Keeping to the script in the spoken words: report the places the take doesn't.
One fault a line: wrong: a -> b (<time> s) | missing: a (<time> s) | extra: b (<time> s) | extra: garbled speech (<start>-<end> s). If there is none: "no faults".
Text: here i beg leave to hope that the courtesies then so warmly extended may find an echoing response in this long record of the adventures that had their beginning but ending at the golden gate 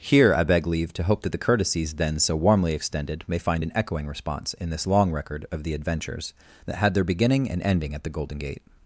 wrong: but -> and (7.5 s)